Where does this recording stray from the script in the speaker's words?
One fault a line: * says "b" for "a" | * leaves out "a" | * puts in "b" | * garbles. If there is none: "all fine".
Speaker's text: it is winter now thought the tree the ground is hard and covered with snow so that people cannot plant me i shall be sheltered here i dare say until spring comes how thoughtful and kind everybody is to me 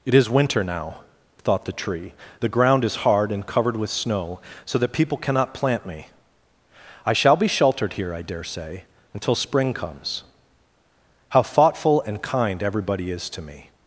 all fine